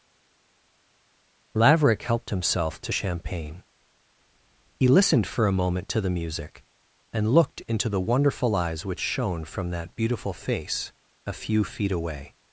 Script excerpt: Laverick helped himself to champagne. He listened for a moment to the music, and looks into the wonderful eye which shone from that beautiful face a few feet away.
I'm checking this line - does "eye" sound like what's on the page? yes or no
no